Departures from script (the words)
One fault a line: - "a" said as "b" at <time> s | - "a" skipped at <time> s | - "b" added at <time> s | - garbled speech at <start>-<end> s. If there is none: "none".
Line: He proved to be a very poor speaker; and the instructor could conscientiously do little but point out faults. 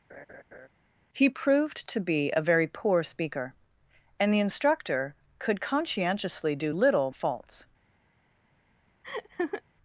- "but point out" skipped at 7.1 s